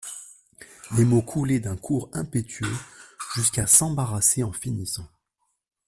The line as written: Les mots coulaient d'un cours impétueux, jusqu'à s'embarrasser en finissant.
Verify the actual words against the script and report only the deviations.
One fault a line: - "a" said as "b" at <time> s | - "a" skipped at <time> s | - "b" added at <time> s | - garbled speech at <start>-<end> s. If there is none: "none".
none